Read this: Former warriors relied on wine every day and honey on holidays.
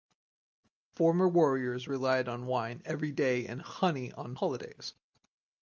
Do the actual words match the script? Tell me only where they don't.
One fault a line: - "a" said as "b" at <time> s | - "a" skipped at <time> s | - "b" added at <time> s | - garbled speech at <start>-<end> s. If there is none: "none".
none